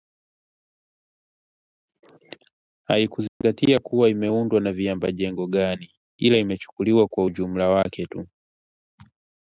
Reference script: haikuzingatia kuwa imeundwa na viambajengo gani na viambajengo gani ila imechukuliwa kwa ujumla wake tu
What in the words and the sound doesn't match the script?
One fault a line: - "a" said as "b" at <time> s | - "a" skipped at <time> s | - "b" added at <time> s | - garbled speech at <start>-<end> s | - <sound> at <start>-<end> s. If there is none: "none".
- dropout at 3.3-3.4 s
- "na viambajengo gani" skipped at 6.0 s